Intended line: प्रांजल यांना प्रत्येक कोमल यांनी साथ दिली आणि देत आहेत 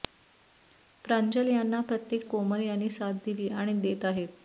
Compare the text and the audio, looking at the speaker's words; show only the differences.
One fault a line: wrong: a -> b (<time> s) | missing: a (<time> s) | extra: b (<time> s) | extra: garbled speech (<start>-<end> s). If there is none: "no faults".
no faults